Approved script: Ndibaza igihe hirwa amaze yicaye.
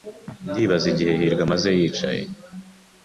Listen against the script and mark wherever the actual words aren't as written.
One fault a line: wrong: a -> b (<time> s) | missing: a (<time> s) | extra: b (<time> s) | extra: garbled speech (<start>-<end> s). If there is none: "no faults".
no faults